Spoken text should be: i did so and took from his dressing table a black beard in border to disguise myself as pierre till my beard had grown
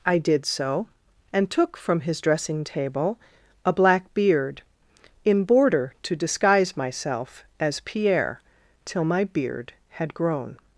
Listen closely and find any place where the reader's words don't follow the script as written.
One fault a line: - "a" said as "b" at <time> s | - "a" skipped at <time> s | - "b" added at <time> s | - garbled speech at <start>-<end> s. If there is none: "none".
none